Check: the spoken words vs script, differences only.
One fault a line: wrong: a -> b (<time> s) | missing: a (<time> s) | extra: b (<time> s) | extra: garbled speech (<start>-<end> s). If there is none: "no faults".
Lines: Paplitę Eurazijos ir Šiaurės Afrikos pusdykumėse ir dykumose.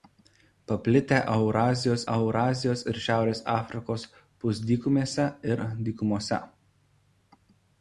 extra: Eurazijos (2.1 s)